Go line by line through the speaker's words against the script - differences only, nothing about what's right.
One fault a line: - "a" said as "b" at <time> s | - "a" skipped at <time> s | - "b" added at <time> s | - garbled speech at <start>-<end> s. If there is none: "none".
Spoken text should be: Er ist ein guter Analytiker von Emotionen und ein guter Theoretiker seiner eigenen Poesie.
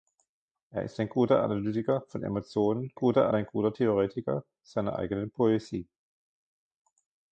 - "und" said as "guter" at 3.0 s